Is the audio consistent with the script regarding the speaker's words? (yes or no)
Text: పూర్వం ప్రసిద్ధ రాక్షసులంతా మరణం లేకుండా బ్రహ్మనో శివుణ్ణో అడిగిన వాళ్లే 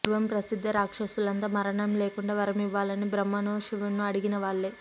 no